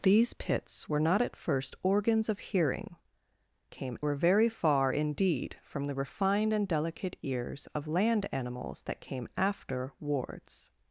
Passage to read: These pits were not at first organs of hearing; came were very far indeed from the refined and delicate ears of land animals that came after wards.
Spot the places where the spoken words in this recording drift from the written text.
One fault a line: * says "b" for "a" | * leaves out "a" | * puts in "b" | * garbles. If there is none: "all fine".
all fine